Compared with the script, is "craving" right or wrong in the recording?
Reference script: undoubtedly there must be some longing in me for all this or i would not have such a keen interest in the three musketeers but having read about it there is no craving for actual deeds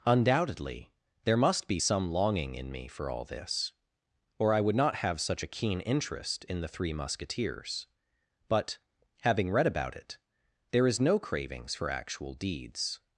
wrong